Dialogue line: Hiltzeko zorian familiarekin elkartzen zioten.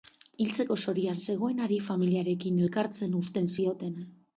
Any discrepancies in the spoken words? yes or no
yes